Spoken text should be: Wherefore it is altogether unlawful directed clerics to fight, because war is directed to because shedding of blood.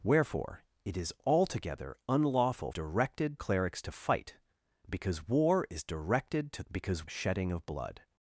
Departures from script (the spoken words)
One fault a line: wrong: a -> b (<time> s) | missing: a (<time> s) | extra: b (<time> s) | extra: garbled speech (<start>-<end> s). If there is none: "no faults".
no faults